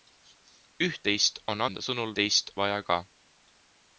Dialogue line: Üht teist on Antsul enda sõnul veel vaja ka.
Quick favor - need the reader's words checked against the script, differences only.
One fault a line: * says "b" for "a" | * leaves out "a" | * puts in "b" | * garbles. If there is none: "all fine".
* leaves out "Antsul"
* says "teist" for "veel"